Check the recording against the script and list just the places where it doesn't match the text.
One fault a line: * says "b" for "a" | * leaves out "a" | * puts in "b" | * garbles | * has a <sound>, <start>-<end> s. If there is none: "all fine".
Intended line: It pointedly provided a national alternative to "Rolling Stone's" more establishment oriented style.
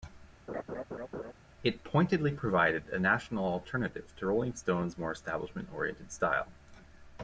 * has a laugh, 0.5-1.3 s